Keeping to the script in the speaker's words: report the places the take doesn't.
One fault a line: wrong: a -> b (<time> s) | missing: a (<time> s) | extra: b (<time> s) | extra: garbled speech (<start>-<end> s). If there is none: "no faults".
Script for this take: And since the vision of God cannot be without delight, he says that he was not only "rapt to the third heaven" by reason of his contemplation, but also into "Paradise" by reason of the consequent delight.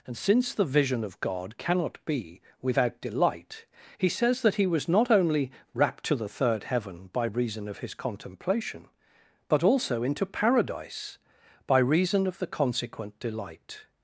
no faults